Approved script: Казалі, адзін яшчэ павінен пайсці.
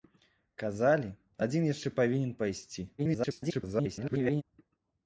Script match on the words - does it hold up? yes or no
no